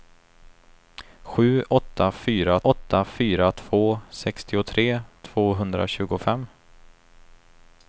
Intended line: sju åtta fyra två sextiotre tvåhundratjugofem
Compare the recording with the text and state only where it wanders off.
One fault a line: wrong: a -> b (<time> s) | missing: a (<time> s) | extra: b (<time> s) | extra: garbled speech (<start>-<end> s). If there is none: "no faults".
extra: åtta fyra (2.6 s)